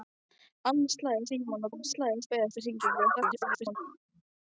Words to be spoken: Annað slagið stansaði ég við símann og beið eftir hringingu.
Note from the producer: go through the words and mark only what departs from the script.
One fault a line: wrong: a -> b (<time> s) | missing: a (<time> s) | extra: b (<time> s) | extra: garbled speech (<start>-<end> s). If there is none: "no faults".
wrong: stansaði -> símann (1.3 s)
wrong: símann -> slagið (1.9 s)
extra: garbled speech (3.2-3.8 s)